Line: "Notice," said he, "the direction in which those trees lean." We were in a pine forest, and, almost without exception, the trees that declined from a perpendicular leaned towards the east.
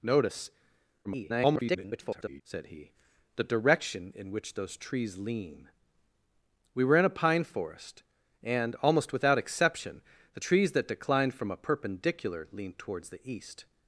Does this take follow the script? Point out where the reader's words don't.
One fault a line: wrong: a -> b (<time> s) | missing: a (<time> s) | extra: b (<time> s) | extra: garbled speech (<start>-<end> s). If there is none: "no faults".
extra: garbled speech (1.0-2.4 s)